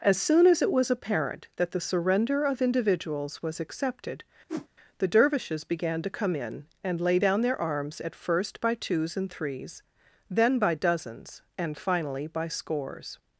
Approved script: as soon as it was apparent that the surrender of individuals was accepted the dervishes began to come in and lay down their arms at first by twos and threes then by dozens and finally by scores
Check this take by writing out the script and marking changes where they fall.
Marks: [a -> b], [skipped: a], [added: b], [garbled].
as soon as it was apparent that the surrender of individuals was accepted the dervishes began to come in and lay down their arms at first by twos and threes then by dozens and finally by scores